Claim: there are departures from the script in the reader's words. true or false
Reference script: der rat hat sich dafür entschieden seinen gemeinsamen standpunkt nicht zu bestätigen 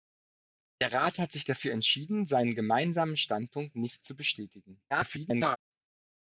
true